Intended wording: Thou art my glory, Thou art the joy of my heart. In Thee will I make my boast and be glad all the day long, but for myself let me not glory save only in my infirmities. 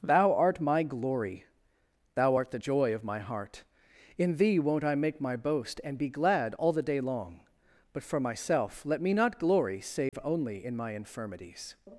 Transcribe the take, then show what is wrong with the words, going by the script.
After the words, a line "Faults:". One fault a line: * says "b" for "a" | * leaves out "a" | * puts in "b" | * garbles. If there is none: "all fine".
Thou art my glory, Thou art the joy of my heart. In Thee won't I make my boast and be glad all the day long, but for myself let me not glory save only in my infirmities.
Faults:
* says "won't" for "will"